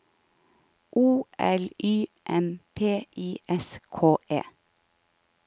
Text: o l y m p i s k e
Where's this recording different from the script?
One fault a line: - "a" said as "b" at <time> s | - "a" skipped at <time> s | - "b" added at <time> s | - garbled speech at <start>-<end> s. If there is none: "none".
none